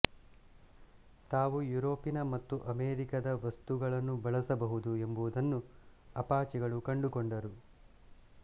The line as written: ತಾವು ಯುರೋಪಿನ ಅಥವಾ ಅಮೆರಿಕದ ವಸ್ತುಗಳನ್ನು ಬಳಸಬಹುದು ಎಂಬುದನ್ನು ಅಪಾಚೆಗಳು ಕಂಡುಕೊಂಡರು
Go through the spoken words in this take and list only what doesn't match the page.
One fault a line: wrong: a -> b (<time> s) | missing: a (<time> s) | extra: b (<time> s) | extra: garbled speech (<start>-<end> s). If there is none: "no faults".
wrong: ಅಥವಾ -> ಮತ್ತು (2.3 s)